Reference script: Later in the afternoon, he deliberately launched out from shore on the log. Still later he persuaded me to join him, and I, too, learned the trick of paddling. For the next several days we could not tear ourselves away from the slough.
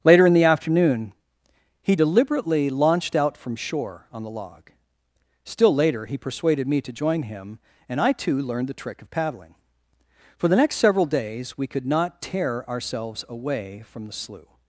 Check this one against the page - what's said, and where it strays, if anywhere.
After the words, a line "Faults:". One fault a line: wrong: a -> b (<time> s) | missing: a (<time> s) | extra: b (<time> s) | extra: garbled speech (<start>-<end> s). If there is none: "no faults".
Later in the afternoon, he deliberately launched out from shore on the log. Still later he persuaded me to join him, and I, too, learned the trick of paddling. For the next several days we could not tear ourselves away from the slough.
Faults:
no faults